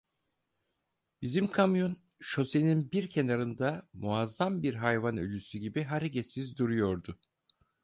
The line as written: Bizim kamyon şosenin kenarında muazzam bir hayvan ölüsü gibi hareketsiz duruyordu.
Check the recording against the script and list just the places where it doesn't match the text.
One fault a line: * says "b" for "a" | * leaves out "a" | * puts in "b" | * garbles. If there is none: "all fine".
* puts in "bir"